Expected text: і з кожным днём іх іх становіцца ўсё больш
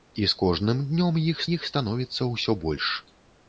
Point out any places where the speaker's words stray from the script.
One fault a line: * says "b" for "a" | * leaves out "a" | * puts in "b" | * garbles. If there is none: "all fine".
all fine